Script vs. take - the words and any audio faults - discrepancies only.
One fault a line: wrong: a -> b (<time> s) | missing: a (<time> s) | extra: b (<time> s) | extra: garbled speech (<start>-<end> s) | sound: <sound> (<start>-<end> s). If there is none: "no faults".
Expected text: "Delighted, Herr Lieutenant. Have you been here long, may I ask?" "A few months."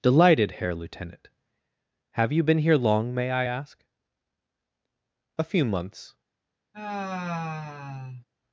sound: sigh (6.7-8.2 s)